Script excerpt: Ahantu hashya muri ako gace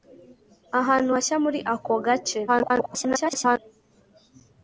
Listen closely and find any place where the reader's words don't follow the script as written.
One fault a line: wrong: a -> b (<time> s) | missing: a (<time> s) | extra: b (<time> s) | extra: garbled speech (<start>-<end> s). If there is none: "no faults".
extra: garbled speech (2.5-3.6 s)